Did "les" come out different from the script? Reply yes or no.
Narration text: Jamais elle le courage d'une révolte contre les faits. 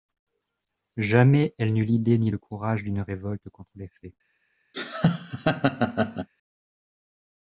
no